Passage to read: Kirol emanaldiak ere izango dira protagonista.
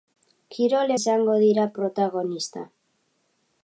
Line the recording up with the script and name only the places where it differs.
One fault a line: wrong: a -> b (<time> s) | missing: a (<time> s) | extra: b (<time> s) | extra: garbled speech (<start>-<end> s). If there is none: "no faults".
missing: emanaldiak ere (0.9 s)